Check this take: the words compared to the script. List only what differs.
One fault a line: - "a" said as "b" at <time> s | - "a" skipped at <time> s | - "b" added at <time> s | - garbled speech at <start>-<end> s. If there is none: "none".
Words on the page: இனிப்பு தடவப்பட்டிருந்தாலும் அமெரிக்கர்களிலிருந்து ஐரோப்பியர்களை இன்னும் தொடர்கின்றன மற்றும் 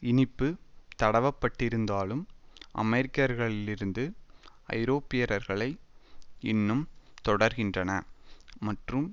none